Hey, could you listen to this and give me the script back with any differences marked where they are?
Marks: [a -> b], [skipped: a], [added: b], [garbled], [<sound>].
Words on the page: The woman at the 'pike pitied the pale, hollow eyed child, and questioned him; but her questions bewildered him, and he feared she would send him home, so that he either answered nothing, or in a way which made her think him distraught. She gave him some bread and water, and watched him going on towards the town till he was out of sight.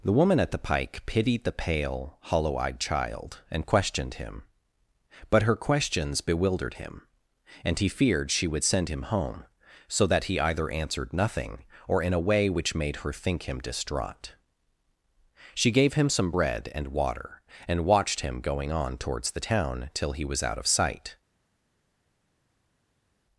The woman at the 'pike pitied the pale, hollow eyed child, and questioned him; but her questions bewildered him, and he feared she would send him home, so that he either answered nothing, or in a way which made her think him distraught. She gave him some bread and water, and watched him going on towards the town till he was out of sight.